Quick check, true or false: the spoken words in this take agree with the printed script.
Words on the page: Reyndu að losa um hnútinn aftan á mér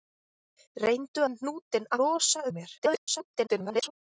false